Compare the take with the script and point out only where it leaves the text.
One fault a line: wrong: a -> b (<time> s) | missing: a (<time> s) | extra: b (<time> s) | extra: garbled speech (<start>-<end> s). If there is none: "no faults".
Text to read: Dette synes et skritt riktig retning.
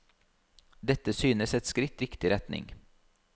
no faults